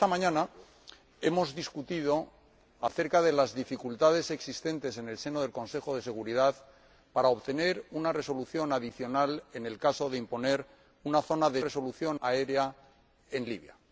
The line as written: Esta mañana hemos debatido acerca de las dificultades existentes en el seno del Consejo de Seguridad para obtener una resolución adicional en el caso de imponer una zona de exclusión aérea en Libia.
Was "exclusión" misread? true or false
true